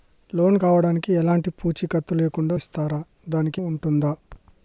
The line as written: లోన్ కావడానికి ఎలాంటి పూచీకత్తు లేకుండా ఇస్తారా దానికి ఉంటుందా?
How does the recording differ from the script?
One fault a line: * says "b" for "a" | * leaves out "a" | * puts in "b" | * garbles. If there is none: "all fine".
all fine